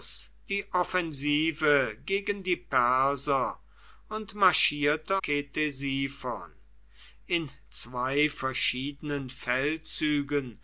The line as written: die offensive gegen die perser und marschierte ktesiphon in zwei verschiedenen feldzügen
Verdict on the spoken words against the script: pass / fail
pass